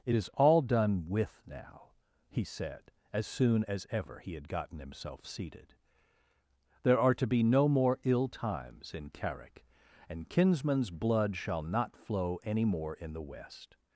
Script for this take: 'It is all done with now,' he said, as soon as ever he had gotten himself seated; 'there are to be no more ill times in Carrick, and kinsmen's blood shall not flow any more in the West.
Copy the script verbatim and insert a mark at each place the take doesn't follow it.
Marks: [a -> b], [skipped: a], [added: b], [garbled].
'It is all done with now,' he said, as soon as ever he had gotten himself seated; 'there are to be no more ill times in Carrick, and kinsmen's blood shall not flow any more in the West.